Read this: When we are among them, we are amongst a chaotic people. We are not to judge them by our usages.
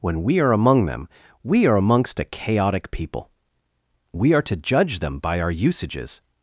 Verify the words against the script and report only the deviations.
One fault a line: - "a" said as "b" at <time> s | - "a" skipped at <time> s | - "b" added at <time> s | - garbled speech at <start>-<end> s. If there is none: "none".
- "not" skipped at 4.4 s